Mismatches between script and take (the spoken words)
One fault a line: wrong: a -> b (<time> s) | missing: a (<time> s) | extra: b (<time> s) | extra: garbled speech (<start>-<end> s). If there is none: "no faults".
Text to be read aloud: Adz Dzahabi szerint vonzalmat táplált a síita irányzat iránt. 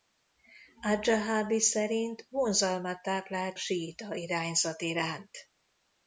missing: a (3.6 s)